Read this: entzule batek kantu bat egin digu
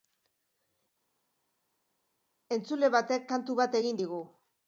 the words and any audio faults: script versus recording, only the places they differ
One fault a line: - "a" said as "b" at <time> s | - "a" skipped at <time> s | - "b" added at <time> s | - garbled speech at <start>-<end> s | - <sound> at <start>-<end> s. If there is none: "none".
none